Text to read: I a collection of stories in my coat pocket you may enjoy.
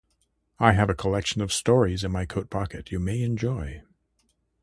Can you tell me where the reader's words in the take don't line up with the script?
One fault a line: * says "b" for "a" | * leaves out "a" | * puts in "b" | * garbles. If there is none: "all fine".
* puts in "have"